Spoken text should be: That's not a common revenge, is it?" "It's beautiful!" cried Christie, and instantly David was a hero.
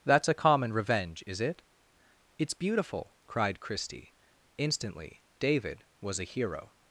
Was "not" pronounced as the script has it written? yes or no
no